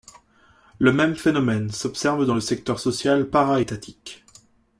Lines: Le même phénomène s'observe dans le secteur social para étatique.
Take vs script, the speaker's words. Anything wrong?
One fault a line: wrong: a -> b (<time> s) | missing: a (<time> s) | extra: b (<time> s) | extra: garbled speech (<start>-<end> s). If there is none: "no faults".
no faults